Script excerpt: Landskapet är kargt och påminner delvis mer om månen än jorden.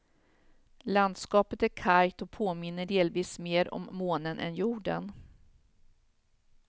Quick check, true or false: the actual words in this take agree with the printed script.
true